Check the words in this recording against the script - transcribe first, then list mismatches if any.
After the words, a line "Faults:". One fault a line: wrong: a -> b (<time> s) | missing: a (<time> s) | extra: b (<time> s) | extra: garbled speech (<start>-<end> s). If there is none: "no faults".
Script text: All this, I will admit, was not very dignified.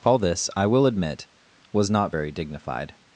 All this, I will admit, was not very dignified.
Faults:
no faults